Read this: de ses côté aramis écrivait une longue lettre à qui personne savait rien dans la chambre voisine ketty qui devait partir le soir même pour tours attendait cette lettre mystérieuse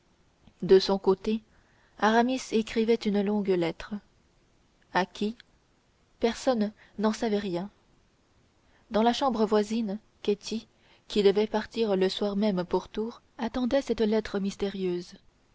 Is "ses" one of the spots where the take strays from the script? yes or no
yes